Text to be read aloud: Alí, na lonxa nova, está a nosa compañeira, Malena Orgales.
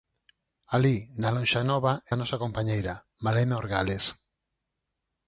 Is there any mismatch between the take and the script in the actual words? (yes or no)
yes